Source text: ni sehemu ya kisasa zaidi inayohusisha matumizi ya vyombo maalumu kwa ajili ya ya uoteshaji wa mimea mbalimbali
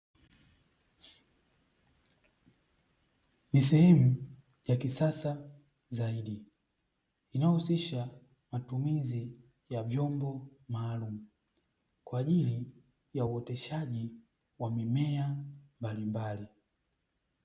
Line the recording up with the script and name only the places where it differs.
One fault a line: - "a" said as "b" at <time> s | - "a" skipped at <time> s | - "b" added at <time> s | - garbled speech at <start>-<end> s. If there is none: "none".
- "ya" skipped at 13.2 s